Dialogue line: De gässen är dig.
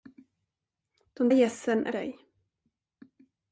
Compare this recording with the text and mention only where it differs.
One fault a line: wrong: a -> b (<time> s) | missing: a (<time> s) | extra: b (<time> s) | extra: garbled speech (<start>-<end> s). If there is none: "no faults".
no faults